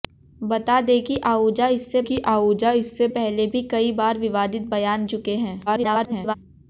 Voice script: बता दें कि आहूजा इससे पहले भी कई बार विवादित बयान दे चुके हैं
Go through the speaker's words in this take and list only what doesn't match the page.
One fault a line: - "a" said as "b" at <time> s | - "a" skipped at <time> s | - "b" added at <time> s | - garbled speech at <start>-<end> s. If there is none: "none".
- "कि आहूजा इससे" added at 2.0 s
- "दे" skipped at 5.0 s
- garbled speech at 5.7-6.3 s